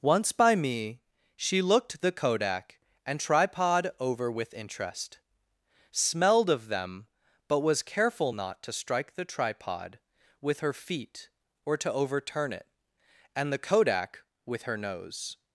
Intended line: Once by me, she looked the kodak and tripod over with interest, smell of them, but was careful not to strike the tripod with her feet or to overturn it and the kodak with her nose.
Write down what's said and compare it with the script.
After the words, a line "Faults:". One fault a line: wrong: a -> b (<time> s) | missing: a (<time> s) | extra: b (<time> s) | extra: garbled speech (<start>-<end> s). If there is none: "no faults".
Once by me, she looked the kodak and tripod over with interest, smelled of them, but was careful not to strike the tripod with her feet or to overturn it and the kodak with her nose.
Faults:
wrong: smell -> smelled (5.9 s)